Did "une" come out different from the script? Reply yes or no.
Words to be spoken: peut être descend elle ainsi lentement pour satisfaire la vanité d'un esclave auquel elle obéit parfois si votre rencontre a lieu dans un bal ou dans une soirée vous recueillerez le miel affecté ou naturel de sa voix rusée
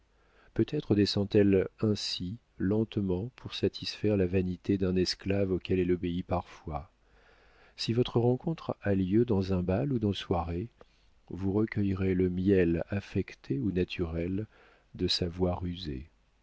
yes